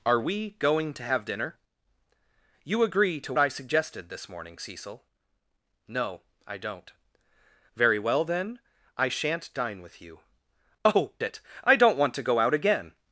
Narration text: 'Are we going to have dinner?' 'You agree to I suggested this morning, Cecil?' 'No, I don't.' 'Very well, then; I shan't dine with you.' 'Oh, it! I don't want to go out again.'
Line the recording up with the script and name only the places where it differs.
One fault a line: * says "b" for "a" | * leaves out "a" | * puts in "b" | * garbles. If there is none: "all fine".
all fine